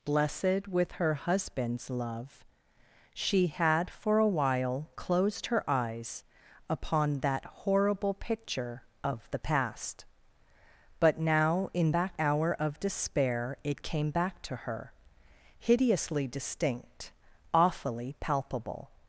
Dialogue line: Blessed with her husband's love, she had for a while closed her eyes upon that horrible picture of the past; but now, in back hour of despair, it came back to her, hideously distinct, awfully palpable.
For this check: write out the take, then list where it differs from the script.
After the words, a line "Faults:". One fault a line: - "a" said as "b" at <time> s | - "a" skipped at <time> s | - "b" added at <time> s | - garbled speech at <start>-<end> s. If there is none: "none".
Blessed with her husband's love, she had for a while closed her eyes upon that horrible picture of the past; but now, in back hour of despair, it came back to her, hideously distinct, awfully palpable.
Faults:
none